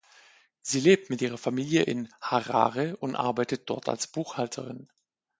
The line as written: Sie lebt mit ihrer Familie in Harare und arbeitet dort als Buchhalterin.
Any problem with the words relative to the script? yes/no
no